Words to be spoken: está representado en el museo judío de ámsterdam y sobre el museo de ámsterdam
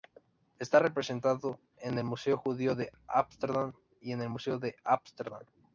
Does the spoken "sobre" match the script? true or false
false